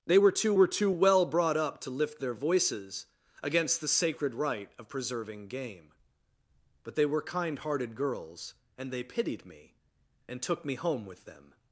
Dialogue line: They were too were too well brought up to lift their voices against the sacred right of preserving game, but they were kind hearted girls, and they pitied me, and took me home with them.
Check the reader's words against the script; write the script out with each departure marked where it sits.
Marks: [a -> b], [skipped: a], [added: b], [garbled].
They were too were too well brought up to lift their voices against the sacred right of preserving game, but they were kind hearted girls, and they pitied me, and took me home with them.